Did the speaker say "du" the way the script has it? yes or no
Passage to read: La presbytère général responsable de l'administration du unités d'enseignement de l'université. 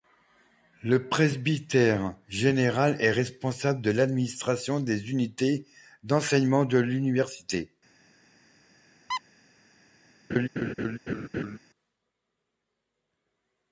no